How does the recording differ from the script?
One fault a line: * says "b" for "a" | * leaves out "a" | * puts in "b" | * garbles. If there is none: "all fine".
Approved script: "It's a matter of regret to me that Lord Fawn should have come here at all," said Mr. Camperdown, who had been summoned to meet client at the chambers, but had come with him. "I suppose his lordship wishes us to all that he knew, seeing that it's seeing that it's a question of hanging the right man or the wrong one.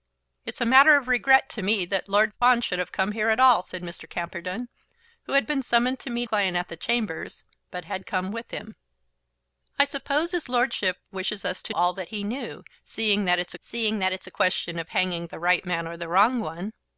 all fine